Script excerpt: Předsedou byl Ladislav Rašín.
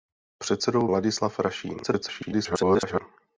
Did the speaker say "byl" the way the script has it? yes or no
no